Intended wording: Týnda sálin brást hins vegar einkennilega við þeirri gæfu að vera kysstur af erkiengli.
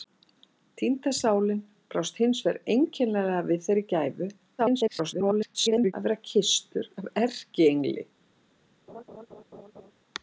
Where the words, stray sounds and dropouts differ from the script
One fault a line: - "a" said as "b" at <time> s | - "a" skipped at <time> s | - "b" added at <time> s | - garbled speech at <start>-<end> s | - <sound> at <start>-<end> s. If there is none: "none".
- garbled speech at 4.6-5.9 s
- laugh at 8.9-9.9 s